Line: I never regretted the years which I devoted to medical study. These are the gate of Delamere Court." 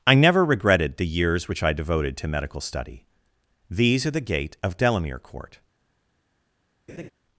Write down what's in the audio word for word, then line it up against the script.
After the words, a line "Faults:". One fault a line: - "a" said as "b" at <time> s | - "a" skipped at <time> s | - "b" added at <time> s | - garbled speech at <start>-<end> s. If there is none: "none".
I never regretted the years which I devoted to medical study. These are the gate of Delamere Court."
Faults:
none